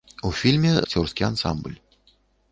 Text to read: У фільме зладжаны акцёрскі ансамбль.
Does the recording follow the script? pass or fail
fail